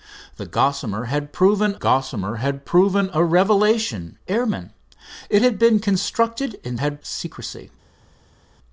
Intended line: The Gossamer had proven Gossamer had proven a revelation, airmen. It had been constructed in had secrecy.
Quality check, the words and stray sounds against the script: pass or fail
pass